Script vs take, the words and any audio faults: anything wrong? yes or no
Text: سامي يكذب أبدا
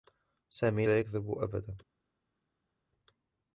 yes